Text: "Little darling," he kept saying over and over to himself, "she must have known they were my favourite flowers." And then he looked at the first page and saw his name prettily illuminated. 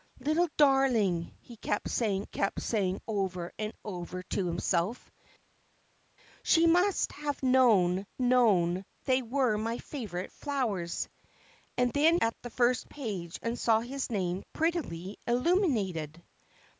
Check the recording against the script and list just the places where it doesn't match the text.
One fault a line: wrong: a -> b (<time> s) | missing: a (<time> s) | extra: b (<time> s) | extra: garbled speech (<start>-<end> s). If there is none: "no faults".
extra: kept saying (2.3 s)
extra: known (8.2 s)
missing: he looked (12.2 s)